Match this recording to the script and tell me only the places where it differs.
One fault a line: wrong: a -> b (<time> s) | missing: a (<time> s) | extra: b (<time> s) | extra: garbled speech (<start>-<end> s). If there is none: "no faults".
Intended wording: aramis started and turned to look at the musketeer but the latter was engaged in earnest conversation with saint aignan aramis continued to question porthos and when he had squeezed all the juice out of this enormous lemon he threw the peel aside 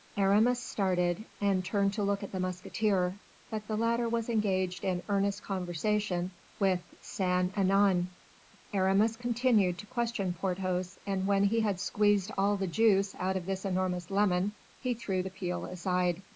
no faults